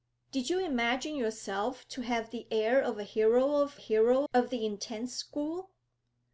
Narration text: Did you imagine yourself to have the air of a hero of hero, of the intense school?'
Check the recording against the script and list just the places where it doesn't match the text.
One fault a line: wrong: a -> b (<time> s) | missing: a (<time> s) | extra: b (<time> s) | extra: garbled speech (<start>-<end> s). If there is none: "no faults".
no faults